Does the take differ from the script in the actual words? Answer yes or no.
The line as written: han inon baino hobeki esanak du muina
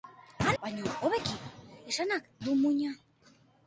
yes